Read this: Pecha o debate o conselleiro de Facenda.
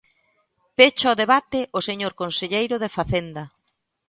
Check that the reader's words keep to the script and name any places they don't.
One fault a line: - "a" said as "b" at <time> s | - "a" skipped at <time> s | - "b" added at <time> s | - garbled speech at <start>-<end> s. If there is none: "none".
- "señor" added at 1.9 s